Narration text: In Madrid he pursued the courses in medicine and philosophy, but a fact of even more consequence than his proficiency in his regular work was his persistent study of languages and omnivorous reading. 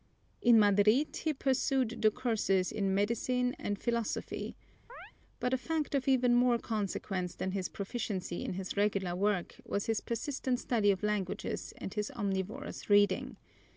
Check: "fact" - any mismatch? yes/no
no